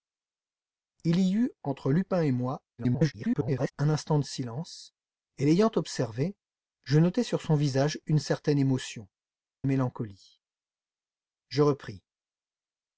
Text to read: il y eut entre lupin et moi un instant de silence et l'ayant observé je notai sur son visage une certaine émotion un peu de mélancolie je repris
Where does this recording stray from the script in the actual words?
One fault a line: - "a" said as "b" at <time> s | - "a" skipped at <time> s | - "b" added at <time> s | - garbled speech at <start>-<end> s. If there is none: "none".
- garbled speech at 2.8-3.7 s
- "un peu de" skipped at 9.1 s